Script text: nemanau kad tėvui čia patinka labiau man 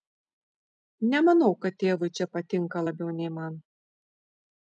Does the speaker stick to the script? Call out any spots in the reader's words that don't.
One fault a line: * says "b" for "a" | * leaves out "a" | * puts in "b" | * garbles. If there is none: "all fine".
* puts in "nei"